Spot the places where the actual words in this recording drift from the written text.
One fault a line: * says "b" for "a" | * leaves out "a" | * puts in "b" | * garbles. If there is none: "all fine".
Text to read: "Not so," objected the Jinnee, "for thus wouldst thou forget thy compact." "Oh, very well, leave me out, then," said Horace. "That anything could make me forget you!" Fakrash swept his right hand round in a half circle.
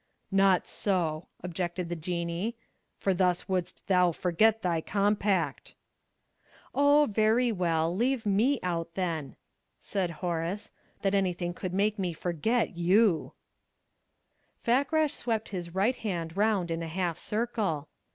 all fine